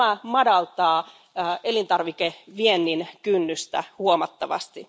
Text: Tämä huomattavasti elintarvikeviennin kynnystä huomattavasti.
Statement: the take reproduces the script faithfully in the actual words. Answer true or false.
false